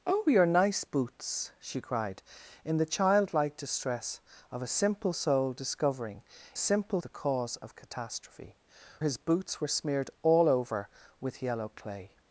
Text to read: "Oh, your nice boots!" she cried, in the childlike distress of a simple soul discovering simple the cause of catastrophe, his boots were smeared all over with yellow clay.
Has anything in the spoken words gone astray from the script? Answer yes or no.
no